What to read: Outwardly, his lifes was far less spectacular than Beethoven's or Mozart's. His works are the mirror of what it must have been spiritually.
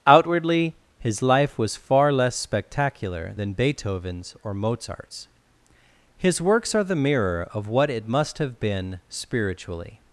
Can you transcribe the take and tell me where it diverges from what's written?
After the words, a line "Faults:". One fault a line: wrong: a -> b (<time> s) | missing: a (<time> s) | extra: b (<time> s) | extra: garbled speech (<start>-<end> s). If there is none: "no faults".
Outwardly, his life was far less spectacular than Beethoven's or Mozart's. His works are the mirror of what it must have been spiritually.
Faults:
wrong: lifes -> life (1.2 s)